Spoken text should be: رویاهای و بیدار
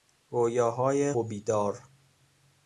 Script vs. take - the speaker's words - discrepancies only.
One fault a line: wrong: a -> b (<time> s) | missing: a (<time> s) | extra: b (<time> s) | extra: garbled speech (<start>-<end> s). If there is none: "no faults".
no faults